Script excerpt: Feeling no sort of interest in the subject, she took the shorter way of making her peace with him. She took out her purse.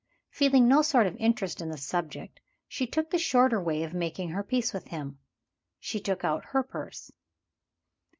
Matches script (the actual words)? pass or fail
pass